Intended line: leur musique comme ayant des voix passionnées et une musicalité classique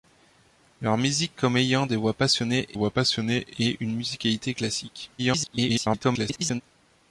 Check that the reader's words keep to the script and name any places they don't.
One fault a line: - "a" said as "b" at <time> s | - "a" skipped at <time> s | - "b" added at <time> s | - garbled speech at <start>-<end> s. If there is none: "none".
- "voix passionnées" added at 2.7 s
- garbled speech at 5.2-6.6 s